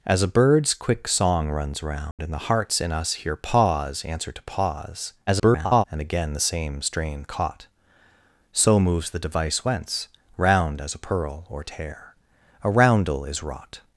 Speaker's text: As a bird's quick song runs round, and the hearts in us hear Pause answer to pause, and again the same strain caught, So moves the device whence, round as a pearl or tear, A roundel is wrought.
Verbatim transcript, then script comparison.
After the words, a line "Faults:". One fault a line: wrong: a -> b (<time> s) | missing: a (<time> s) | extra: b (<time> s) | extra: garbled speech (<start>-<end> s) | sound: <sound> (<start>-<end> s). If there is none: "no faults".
As a bird's quick song runs round, and the hearts in us hear Pause answer to pause, [garbled] and again the same strain caught, So moves the device whence, round as a pearl or tear, A roundel is wrought.
Faults:
sound: dropout (2.1-2.2 s)
extra: garbled speech (5.3-5.8 s)